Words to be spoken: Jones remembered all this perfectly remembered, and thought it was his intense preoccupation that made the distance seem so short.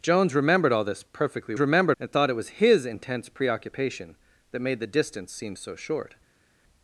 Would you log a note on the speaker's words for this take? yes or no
no